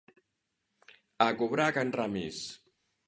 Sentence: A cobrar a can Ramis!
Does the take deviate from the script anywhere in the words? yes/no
no